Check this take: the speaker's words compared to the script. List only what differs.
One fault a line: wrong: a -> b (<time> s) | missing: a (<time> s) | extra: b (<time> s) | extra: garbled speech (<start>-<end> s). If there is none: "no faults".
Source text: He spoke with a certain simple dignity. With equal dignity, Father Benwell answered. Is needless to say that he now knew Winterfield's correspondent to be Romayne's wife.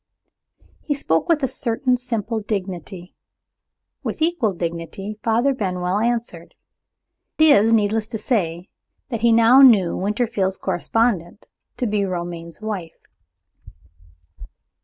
no faults